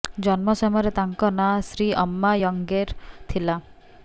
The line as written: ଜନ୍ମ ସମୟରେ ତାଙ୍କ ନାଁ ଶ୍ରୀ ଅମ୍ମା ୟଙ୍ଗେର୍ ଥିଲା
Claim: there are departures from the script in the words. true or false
false